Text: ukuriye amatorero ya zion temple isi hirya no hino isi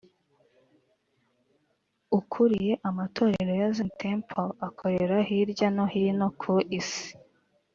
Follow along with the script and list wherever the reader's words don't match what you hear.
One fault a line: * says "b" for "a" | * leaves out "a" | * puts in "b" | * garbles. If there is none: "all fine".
* says "akorera" for "isi"
* puts in "ku"